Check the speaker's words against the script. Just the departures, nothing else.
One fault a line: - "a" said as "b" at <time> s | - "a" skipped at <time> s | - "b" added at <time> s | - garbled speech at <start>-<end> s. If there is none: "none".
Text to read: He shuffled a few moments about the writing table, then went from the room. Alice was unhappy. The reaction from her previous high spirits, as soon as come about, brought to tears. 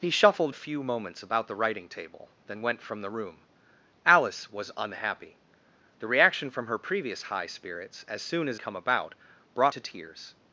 none